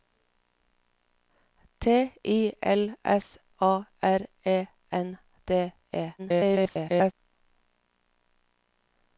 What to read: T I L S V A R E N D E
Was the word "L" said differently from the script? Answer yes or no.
no